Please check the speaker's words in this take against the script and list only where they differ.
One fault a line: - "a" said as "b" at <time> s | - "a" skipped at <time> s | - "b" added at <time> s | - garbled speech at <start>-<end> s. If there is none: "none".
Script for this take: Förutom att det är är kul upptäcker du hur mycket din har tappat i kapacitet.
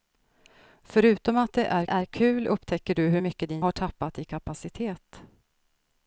none